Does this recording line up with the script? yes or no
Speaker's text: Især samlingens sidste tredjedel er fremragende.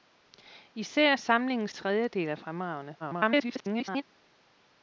no